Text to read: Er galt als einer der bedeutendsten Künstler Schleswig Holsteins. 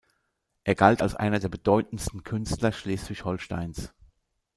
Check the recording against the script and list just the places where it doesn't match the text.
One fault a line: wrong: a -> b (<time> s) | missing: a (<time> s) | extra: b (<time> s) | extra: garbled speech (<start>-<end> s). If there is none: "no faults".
no faults